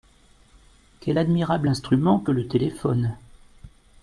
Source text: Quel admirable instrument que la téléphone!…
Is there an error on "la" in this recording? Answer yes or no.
yes